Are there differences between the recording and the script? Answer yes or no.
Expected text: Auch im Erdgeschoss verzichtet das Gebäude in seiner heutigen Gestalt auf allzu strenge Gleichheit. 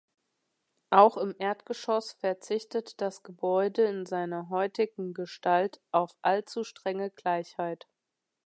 no